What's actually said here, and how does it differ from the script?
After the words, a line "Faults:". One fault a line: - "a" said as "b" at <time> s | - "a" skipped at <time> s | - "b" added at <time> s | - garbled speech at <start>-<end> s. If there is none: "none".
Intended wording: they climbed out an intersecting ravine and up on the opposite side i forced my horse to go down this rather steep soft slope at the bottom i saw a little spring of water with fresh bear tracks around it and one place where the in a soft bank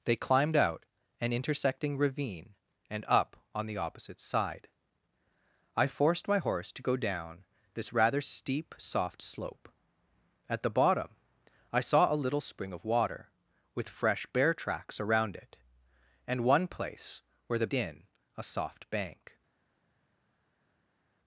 they climbed out an intersecting ravine and up on the opposite side i forced my horse to go down this rather steep soft slope at the bottom i saw a little spring of water with fresh bear tracks around it and one place where the in a soft bank
Faults:
none